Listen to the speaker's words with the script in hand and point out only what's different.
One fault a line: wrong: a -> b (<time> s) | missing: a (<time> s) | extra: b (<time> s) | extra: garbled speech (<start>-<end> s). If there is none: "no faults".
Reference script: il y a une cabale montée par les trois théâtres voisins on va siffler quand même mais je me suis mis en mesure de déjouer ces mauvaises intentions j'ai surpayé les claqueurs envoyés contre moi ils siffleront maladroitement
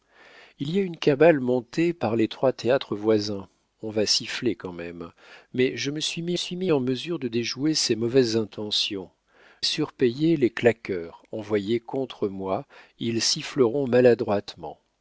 extra: suis mis (6.3 s)
missing: j'ai (9.1 s)